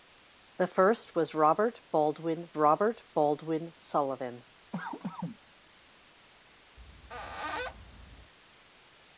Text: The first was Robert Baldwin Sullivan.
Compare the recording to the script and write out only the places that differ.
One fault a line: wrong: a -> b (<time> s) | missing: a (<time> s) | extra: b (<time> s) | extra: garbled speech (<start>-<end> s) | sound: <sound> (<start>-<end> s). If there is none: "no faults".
extra: Robert Baldwin (2.6 s)
sound: cough (4.7-5.4 s)
sound: squeak (6.8-8.3 s)